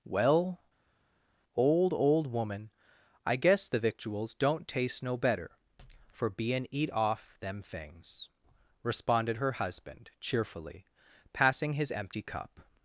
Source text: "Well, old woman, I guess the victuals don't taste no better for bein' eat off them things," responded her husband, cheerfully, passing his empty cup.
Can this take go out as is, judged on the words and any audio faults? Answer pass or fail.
fail